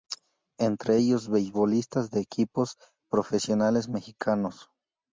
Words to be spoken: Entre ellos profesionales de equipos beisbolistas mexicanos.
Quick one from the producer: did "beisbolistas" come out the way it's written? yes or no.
no